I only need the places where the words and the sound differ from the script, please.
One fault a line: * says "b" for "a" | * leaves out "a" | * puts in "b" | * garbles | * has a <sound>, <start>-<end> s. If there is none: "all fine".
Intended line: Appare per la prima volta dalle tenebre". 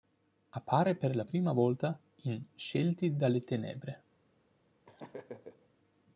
* puts in "in Scelti"
* has a laugh, 4.8-5.7 s